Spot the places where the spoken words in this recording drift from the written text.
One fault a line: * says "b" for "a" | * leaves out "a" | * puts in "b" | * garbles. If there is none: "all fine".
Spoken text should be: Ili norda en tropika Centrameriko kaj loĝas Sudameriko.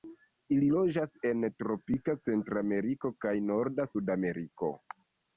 * says "loĝas" for "norda"
* says "norda" for "loĝas"